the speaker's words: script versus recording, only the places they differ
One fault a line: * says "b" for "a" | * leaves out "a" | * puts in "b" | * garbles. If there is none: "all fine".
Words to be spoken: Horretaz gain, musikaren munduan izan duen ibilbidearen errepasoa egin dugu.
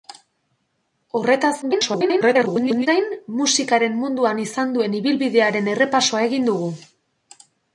* garbles